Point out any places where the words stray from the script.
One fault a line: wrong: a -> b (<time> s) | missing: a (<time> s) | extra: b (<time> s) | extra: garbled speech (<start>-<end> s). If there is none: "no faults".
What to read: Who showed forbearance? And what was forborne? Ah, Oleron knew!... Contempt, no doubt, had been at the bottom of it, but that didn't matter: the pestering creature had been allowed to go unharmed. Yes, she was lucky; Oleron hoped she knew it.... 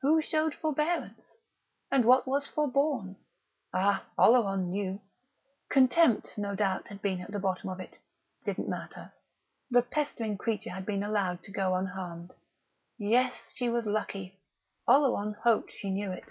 missing: but that (8.0 s)